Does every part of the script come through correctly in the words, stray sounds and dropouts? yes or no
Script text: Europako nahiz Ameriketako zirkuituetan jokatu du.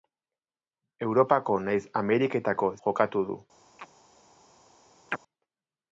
no